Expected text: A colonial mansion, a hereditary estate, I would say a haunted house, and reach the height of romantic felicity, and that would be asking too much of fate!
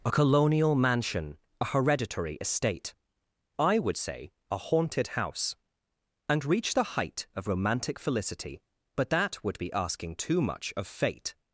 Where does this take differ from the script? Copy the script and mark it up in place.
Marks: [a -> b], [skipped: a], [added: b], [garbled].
A colonial mansion, a hereditary estate, I would say a haunted house, and reach the height of romantic felicity, [and -> but] that would be asking too much of fate!